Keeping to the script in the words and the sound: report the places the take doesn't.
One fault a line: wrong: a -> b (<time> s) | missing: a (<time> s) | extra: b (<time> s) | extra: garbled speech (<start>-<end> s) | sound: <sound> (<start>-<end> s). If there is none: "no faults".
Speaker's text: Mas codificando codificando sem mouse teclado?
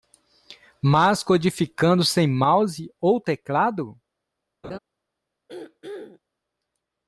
missing: codificando (2.0 s)
extra: ou (3.0 s)
sound: laugh (4.6-4.8 s)
sound: throat clearing (5.5-6.2 s)